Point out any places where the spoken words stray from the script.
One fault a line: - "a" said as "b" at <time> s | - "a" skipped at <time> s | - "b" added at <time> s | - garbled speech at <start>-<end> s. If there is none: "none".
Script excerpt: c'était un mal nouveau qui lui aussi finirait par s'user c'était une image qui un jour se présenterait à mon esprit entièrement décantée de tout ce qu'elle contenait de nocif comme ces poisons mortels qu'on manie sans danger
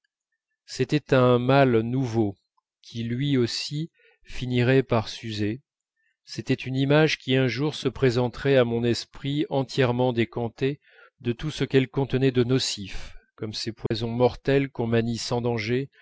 none